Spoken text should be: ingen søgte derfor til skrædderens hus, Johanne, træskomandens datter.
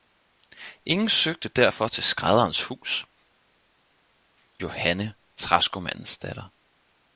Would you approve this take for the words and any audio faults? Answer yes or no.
yes